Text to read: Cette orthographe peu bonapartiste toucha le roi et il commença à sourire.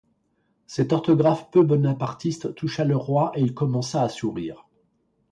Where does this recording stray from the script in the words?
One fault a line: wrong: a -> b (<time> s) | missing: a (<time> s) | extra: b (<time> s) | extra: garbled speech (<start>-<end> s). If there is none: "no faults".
no faults